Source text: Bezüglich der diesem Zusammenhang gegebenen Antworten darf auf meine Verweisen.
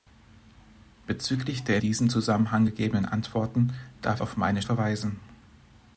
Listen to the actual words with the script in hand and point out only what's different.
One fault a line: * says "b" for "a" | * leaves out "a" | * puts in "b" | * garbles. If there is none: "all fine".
all fine